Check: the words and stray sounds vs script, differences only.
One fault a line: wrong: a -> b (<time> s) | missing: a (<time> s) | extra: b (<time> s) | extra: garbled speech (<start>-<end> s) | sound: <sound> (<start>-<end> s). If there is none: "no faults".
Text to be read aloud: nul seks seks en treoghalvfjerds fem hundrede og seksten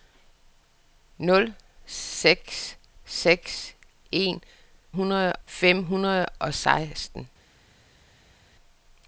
wrong: treoghalvfjerds -> hundrede (4.9 s)